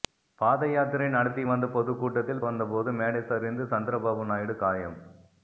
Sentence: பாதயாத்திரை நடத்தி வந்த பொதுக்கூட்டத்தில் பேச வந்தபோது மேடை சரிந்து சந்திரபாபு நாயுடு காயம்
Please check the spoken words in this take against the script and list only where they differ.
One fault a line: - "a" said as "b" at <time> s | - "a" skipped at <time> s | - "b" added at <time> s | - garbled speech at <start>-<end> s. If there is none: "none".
- "பேச" skipped at 2.4 s